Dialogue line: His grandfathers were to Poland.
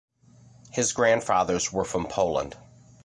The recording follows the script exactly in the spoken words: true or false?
false